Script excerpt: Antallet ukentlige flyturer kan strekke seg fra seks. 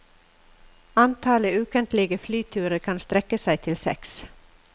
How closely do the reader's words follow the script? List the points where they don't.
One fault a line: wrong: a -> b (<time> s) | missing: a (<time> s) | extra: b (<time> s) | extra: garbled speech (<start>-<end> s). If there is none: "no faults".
wrong: fra -> til (3.7 s)